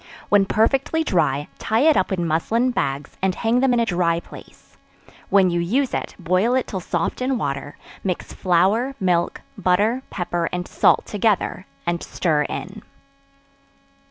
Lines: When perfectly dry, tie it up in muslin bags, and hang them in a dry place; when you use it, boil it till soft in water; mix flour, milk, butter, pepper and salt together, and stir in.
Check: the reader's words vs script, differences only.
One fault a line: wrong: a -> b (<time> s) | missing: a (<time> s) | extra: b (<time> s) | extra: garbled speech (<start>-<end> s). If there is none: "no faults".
no faults